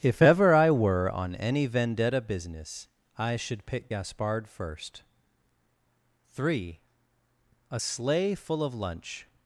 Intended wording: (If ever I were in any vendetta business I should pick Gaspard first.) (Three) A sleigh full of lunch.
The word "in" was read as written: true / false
false